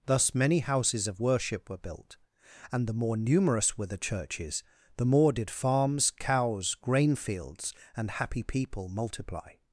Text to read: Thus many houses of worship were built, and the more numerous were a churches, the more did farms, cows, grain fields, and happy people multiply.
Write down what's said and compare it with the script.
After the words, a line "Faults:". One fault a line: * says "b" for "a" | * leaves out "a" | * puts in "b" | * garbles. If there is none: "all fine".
Thus many houses of worship were built, and the more numerous were the churches, the more did farms, cows, grain fields, and happy people multiply.
Faults:
* says "the" for "a"